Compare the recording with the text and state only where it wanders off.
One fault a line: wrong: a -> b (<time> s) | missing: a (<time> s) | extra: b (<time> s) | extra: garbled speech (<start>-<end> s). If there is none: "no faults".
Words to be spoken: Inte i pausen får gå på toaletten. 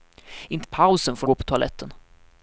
no faults